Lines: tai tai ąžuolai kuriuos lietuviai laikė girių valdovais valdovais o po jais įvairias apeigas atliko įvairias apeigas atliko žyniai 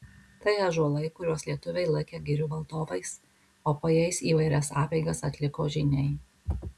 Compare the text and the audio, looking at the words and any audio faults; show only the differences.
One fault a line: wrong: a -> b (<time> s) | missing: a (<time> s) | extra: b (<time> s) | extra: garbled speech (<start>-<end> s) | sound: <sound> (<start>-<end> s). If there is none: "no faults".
missing: tai (0.5 s)
missing: valdovais (3.1 s)
missing: įvairias apeigas atliko (5.7 s)